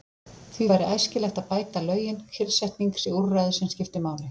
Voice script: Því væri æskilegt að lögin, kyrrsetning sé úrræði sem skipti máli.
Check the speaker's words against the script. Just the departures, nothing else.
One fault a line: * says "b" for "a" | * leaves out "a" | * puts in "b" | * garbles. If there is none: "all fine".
* puts in "bæta"